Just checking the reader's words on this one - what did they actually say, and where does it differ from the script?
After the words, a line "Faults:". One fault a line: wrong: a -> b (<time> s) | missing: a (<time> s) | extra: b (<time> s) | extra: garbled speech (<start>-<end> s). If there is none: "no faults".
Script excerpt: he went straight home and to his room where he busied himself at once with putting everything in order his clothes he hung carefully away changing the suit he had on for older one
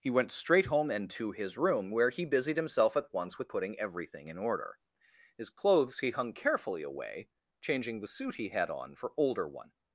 he went straight home and to his room where he busied himself at once with putting everything in order his clothes he hung carefully away changing the suit he had on for older one
Faults:
no faults